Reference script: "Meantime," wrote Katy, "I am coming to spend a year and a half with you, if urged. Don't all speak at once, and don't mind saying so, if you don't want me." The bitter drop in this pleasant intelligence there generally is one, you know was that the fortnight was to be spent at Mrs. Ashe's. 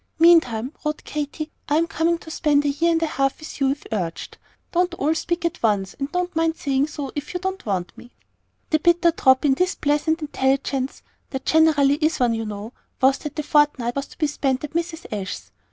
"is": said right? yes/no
yes